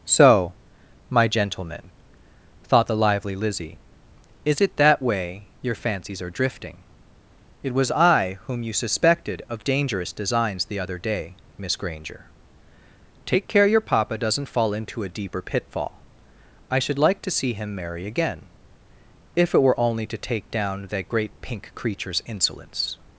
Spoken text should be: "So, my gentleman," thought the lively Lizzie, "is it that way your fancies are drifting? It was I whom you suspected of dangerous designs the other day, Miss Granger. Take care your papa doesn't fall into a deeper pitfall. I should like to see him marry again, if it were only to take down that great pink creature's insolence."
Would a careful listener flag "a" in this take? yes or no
no